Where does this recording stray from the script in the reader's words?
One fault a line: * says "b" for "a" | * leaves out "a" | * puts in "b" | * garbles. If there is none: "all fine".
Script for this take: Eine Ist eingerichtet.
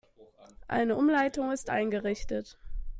* puts in "Umleitung"